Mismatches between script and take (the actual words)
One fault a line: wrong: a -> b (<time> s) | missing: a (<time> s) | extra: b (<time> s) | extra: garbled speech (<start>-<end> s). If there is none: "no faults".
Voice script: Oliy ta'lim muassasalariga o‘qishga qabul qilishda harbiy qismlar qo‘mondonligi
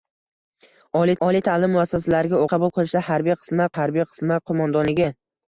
extra: oliy (1.3 s)
missing: o‘qishga (2.4 s)
extra: harbiy qismlar (3.8 s)